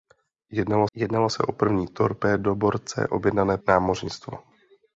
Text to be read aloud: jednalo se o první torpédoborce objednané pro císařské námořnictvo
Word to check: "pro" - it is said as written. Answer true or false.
false